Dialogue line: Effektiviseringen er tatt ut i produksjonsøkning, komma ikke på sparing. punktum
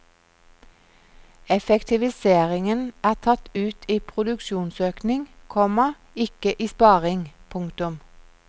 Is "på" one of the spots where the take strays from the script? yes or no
yes